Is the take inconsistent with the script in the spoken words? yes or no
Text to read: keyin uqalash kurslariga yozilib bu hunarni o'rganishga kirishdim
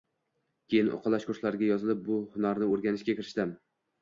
no